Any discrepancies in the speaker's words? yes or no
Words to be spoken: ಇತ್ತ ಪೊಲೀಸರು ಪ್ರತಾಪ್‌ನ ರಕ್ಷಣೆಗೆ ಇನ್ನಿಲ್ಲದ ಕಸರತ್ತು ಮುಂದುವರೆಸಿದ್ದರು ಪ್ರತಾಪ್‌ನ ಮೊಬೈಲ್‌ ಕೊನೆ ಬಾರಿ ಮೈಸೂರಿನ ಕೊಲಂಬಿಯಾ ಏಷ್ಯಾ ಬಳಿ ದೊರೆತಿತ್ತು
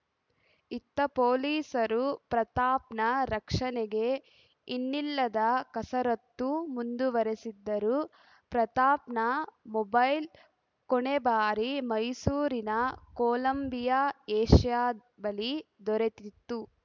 no